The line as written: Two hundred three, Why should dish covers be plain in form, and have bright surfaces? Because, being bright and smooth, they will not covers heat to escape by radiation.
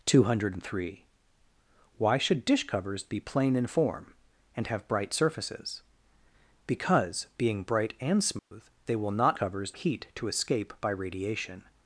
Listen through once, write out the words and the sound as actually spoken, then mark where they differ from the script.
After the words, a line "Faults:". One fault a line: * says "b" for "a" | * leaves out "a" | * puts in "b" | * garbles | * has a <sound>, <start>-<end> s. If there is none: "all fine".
Two hundred three, Why should dish covers be plain in form, and have bright surfaces? Because, being bright and smooth, they will not covers heat to escape by radiation.
Faults:
* has a dropout, 8.4-8.5 s